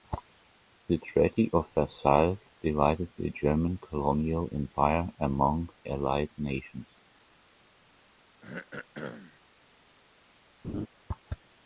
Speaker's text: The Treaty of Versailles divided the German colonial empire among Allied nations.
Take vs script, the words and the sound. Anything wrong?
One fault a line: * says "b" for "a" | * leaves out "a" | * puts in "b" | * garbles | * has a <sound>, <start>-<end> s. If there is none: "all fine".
* has a throat clearing, 8.4-9.4 s
* has a laugh, 10.6-10.9 s